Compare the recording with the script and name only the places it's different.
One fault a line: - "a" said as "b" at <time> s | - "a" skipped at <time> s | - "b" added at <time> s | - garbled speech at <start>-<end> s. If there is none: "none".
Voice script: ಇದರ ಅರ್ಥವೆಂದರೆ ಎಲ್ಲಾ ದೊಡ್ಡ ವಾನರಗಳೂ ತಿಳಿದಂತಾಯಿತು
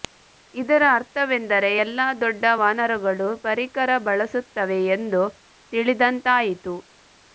- "ಪರಿಕರ ಬಳಸುತ್ತವೆ ಎಂದು" added at 3.5 s